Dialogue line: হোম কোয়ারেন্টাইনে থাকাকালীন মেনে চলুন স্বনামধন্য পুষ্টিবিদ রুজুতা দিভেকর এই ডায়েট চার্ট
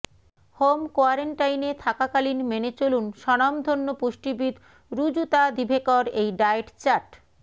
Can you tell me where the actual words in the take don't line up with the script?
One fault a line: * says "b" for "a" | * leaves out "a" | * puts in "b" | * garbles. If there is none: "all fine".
all fine